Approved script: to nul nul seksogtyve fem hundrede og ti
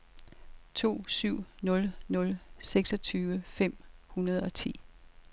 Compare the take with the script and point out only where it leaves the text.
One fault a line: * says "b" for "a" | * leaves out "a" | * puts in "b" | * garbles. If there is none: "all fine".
* puts in "syv"